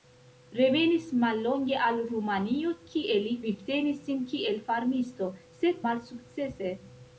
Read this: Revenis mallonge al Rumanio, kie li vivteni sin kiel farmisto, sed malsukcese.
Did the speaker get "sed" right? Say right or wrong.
right